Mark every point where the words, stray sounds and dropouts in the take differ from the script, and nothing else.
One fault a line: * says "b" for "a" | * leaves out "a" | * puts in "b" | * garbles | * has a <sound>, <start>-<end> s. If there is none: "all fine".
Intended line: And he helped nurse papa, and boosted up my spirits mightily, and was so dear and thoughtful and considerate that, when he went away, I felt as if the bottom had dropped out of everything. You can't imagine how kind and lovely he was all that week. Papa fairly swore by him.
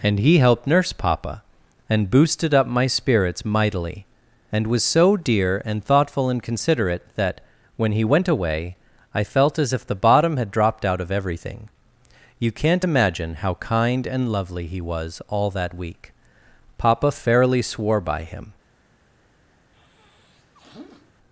* has a sniff, 19.7-21.1 s